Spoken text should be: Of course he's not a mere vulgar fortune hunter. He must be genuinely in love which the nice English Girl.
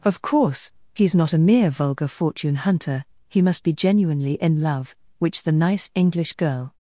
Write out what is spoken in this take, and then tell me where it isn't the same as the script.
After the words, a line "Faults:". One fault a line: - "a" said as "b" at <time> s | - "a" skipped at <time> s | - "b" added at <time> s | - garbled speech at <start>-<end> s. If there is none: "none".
Of course he's not a mere vulgar fortune hunter. He must be genuinely in love which the nice English Girl.
Faults:
none